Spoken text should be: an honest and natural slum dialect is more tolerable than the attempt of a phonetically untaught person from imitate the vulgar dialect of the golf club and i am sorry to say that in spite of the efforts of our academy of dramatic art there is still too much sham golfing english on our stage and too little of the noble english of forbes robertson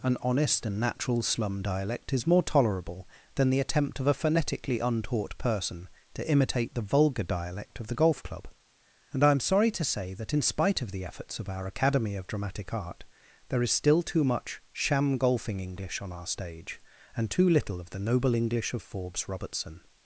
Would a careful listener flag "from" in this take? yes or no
yes